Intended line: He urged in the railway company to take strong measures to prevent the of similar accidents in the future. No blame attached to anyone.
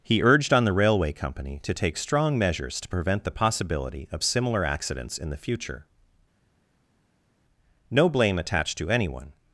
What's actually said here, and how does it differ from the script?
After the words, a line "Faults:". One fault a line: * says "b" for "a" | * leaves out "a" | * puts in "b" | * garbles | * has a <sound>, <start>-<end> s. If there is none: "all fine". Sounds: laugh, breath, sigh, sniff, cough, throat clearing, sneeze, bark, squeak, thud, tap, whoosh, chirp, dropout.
He urged on the railway company to take strong measures to prevent the possibility of similar accidents in the future. No blame attached to anyone.
Faults:
* says "on" for "in"
* puts in "possibility"